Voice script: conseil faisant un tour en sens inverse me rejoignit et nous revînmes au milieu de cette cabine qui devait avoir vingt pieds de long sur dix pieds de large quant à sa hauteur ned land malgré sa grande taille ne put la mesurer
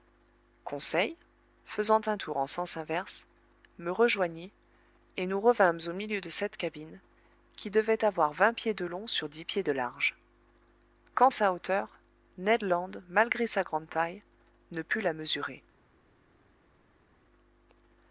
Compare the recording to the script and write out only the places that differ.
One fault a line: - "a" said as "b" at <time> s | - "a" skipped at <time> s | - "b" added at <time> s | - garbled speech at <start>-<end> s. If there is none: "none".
- "à" skipped at 11.3 s